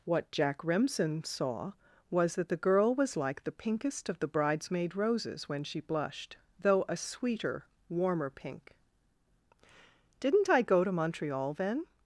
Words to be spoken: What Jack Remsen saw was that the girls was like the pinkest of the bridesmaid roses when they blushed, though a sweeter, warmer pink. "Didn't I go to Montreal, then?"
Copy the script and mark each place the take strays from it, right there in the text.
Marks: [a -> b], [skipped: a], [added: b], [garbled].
What Jack Remsen saw was that the [girls -> girl] was like the pinkest of the bridesmaid roses when [they -> she] blushed, though a sweeter, warmer pink. "Didn't I go to Montreal, then?"